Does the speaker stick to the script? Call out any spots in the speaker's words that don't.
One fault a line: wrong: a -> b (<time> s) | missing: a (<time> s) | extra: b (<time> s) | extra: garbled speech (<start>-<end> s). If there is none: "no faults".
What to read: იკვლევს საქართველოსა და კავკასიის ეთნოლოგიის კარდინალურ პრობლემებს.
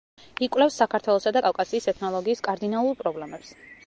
no faults